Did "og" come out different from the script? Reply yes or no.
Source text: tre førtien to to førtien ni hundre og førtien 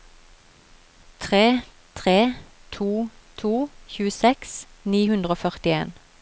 no